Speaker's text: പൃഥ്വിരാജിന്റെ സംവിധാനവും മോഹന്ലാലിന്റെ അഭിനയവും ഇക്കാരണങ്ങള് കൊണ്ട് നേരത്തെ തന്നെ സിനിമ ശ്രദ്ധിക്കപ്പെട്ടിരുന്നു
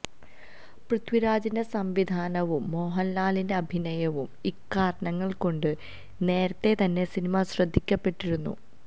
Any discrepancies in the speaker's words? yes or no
no